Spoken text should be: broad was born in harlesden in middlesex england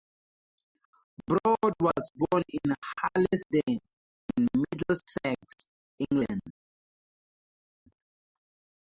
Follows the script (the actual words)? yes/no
yes